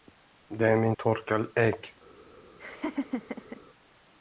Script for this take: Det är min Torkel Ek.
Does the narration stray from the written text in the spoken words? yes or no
no